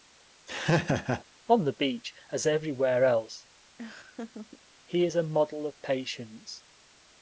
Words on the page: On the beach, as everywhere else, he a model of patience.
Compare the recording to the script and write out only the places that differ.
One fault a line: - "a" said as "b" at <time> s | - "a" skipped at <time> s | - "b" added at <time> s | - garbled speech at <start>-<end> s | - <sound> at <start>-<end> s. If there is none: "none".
- laugh at 0.5-1.2 s
- laugh at 3.8-4.6 s
- "is" added at 5.1 s